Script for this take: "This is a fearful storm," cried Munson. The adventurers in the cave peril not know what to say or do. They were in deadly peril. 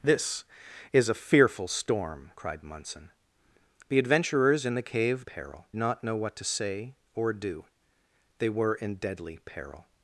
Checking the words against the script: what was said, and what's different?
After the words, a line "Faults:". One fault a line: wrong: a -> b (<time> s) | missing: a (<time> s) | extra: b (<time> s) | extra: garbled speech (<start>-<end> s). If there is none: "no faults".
"This is a fearful storm," cried Munson. The adventurers in the cave peril not know what to say or do. They were in deadly peril.
Faults:
no faults